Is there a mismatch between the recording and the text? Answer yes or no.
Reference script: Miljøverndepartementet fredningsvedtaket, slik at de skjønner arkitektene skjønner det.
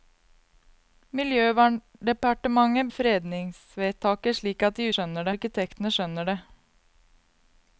no